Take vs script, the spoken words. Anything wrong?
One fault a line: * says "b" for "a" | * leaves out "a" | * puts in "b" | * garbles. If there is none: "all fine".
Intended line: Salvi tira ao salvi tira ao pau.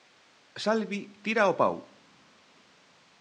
* leaves out "salvi tira ao"